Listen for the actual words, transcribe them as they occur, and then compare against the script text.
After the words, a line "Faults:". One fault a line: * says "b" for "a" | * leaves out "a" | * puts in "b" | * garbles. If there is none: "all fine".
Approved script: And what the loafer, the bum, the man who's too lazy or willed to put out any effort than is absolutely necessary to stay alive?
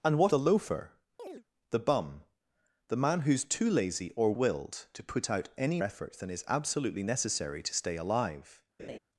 And what the loafer, the bum, the man who's too lazy or willed to put out any effort than is absolutely necessary to stay alive?
Faults:
all fine